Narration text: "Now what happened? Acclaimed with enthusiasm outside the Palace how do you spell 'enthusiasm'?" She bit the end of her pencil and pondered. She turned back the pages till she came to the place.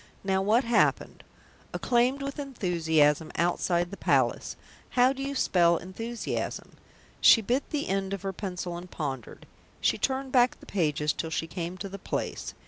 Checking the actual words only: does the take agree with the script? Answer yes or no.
yes